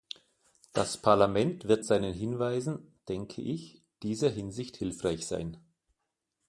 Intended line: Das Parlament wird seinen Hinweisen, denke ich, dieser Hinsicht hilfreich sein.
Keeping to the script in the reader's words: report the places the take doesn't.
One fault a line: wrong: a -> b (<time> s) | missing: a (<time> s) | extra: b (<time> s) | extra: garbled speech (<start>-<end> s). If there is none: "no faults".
no faults